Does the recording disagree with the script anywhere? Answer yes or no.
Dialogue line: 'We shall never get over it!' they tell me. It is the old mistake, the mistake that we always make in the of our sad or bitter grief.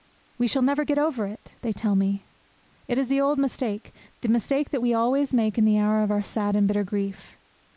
yes